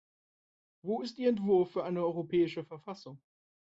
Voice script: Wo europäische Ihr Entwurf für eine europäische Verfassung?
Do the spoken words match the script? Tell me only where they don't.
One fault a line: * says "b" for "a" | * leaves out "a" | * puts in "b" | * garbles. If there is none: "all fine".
* says "ist" for "europäische"